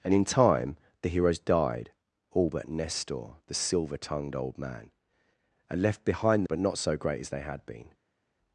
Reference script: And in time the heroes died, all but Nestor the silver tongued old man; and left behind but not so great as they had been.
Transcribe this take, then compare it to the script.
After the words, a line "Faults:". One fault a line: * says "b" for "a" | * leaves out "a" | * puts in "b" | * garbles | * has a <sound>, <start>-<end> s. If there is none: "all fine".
And in time the heroes died, all but Nestor the silver tongued old man; and left behind but not so great as they had been.
Faults:
all fine